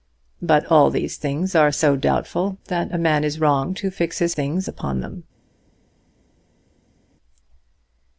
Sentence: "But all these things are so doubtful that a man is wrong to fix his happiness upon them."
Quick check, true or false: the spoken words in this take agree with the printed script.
false